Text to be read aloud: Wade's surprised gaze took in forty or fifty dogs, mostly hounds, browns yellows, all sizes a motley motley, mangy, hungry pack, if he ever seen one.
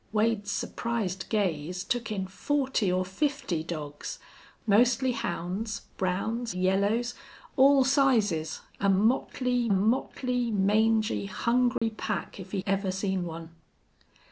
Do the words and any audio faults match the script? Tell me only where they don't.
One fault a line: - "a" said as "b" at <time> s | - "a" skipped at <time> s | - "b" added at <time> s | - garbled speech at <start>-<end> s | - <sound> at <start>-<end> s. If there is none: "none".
- dropout at 11.8-11.8 s